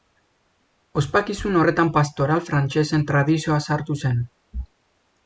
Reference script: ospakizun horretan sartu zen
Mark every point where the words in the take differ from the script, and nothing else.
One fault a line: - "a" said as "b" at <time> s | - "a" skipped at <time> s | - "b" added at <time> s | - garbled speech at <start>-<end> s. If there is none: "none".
- "pastoral frantsesen tradizioa" added at 2.0 s